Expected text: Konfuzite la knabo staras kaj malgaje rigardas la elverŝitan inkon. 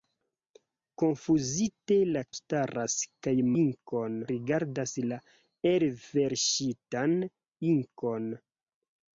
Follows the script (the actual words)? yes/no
no